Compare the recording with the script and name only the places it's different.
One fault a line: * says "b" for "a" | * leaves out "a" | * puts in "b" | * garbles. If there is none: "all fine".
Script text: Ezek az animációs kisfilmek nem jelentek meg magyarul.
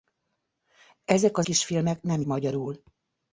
* leaves out "animációs"
* leaves out "jelentek meg"